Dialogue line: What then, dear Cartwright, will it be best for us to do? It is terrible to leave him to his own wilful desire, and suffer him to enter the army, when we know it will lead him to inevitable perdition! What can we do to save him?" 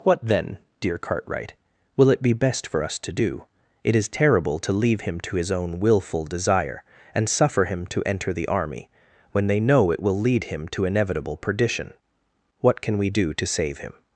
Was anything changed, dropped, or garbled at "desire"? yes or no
no